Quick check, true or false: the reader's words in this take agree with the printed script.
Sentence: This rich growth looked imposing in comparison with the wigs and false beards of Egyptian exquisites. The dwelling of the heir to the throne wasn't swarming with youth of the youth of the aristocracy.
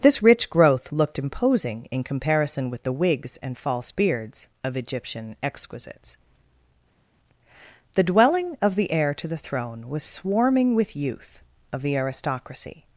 false